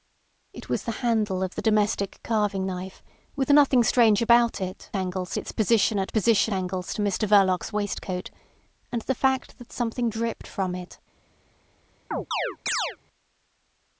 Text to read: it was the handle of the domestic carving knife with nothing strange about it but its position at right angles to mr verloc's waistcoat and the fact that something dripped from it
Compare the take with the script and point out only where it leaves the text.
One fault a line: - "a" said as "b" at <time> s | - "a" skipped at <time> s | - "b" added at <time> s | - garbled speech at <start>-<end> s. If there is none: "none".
- "but" said as "angles" at 5.0 s
- "right" said as "position" at 6.1 s